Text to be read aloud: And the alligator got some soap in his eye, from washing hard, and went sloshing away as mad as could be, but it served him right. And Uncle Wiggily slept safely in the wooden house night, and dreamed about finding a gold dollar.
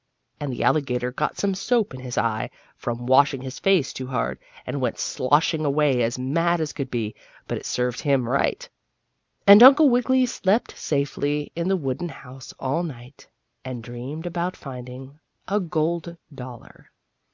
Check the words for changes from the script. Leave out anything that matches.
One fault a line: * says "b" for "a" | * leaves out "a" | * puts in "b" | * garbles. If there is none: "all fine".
* puts in "his face too"
* puts in "all"